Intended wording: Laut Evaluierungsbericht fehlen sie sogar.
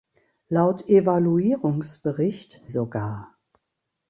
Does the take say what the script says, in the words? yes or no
no